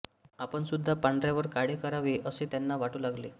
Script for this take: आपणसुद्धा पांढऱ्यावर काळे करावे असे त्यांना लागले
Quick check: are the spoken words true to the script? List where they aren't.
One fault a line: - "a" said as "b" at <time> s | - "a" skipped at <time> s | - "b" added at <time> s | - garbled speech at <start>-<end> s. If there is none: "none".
- "वाटू" added at 2.8 s